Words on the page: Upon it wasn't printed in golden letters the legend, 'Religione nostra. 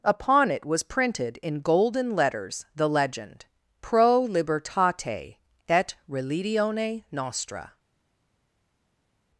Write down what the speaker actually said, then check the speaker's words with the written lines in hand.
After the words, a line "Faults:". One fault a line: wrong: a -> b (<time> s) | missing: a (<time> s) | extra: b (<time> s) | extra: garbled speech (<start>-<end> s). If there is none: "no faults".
Upon it was printed in golden letters the legend, 'Pro libertate et religione nostra.
Faults:
wrong: wasn't -> was (0.7 s)
extra: Pro libertate et (3.8 s)